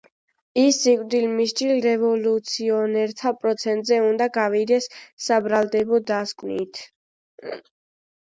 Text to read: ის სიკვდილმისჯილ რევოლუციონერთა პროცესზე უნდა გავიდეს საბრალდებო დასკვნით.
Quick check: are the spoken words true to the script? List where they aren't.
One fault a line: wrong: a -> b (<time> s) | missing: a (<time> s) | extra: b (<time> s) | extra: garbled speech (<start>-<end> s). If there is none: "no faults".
no faults